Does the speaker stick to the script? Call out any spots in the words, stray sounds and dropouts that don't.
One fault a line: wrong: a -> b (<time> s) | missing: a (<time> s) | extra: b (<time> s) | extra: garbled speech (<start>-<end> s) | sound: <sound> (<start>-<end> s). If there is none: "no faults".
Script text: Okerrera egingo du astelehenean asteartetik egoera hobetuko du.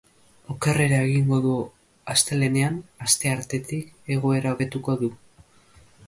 no faults